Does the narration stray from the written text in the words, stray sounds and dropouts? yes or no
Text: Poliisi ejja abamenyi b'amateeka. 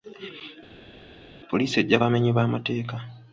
no